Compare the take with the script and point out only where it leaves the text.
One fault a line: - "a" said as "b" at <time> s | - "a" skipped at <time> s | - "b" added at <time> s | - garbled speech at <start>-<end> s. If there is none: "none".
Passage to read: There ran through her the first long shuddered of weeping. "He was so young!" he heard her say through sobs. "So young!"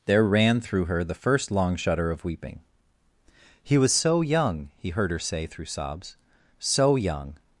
- "shuddered" said as "shudder" at 1.8 s